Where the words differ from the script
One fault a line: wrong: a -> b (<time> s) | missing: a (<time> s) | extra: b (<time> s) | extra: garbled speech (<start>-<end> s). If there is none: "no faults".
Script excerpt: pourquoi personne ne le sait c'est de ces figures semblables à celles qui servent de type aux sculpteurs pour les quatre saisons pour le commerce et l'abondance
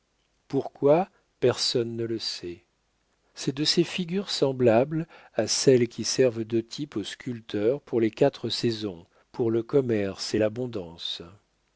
no faults